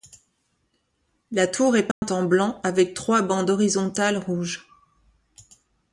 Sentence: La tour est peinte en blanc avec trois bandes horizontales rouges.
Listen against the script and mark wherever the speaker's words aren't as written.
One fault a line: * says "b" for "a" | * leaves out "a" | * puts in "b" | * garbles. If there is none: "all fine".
all fine